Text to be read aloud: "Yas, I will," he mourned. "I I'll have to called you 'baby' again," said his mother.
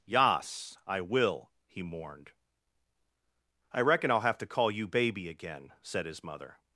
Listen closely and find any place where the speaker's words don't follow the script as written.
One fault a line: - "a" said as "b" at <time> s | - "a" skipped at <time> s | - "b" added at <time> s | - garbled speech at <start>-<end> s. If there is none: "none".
- "reckon" added at 3.8 s
- "called" said as "call" at 4.5 s